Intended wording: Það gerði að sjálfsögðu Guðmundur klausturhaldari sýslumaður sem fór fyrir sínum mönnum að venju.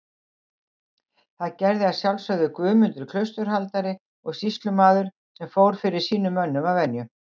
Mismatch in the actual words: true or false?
true